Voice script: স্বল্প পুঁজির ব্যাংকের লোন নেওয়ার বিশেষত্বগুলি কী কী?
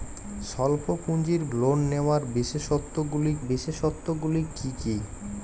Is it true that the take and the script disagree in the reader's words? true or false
true